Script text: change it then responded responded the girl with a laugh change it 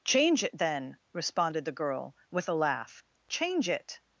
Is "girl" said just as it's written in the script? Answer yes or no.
yes